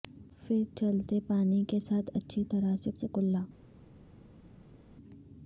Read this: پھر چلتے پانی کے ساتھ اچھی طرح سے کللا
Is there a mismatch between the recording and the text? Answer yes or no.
yes